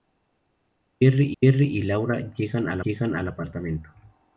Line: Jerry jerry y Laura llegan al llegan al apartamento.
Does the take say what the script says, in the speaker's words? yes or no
yes